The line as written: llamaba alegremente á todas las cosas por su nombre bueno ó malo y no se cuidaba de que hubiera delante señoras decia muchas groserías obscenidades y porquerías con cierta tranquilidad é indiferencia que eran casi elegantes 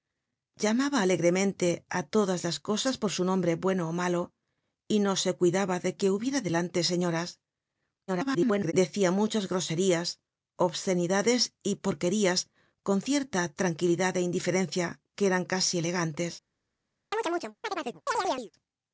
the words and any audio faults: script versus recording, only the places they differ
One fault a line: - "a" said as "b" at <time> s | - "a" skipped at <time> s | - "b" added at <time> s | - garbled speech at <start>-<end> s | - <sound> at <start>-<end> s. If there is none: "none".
- garbled speech at 8.1-8.7 s
- chirp at 17.1-18.5 s